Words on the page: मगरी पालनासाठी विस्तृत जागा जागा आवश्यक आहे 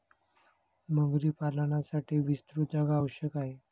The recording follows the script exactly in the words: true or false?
false